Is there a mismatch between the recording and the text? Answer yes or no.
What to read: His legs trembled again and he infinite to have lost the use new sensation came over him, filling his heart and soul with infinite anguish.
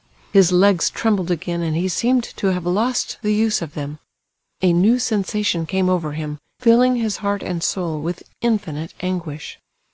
yes